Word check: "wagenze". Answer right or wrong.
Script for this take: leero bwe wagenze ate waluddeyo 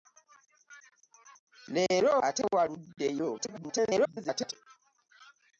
wrong